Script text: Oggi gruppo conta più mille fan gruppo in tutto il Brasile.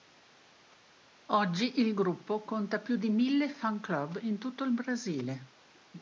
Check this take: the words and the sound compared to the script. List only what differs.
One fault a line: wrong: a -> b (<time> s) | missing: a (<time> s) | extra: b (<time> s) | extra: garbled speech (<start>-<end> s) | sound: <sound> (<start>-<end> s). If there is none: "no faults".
extra: il (1.8 s)
extra: di (3.0 s)
wrong: gruppo -> club (3.8 s)